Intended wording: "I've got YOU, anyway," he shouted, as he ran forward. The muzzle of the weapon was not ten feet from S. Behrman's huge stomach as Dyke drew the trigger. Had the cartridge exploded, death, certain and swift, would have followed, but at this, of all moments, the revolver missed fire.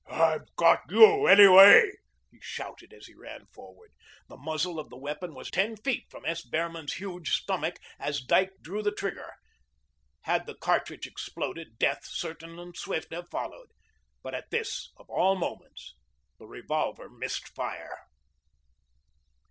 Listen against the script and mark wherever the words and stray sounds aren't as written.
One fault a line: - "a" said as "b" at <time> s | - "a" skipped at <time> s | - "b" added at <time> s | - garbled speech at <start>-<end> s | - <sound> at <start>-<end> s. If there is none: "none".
- "not" skipped at 5.5 s
- "would" skipped at 13.1 s